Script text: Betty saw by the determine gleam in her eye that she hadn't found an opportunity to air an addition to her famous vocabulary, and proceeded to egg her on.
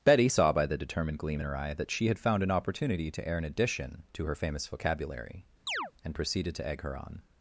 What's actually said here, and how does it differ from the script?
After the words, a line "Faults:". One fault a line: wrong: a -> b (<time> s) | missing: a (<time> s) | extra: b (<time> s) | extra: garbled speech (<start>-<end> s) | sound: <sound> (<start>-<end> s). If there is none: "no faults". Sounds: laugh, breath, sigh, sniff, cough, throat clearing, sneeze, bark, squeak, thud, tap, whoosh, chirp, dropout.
Betty saw by the determined gleam in her eye that she had found an opportunity to air an addition to her famous vocabulary, and proceeded to egg her on.
Faults:
wrong: determine -> determined (0.8 s)
wrong: hadn't -> had (2.1 s)
sound: chirp (5.7-5.9 s)